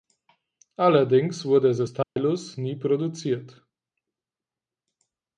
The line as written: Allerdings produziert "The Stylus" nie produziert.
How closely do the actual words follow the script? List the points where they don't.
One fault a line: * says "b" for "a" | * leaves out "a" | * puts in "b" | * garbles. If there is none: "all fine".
* says "wurde" for "produziert"